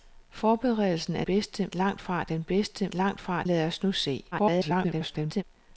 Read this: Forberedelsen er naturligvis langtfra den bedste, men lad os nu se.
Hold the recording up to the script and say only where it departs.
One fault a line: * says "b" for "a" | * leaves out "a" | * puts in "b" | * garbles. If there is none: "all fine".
* says "bedste" for "naturligvis"
* says "langtfra" for "men"
* garbles